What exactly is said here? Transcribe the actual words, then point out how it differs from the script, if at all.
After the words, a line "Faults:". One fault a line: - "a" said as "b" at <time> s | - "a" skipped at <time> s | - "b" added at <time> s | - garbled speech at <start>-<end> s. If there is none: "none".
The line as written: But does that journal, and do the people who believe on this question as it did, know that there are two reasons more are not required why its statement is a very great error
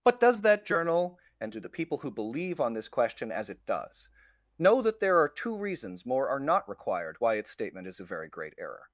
But does that journal, and do the people who believe on this question as it does, know that there are two reasons more are not required why its statement is a very great error
Faults:
- "did" said as "does" at 3.6 s